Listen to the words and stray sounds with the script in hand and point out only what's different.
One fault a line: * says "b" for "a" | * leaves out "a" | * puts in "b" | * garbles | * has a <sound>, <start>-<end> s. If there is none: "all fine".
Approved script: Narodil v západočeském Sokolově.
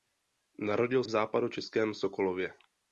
all fine